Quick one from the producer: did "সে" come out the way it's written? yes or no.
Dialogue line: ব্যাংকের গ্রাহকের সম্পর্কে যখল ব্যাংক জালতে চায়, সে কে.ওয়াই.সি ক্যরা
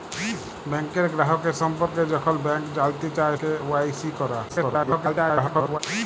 no